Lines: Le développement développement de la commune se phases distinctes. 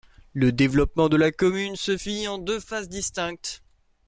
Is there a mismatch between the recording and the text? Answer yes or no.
yes